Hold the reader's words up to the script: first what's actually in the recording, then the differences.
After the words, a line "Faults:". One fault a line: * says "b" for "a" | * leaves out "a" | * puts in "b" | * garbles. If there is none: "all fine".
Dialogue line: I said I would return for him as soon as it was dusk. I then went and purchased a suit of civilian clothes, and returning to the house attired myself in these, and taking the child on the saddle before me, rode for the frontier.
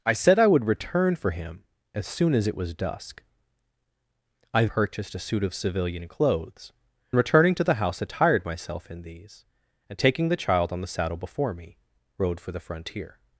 I said I would return for him as soon as it was dusk. I purchased a suit of civilian clothes, returning to the house attired myself in these, and taking the child on the saddle before me, rode for the frontier.
Faults:
* leaves out "then went and"
* leaves out "and"